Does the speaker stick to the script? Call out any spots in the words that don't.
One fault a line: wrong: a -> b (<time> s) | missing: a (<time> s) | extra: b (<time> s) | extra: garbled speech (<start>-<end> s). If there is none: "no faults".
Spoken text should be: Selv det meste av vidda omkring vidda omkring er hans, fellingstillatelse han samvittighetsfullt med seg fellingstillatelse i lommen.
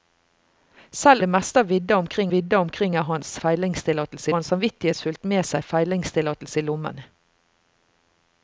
no faults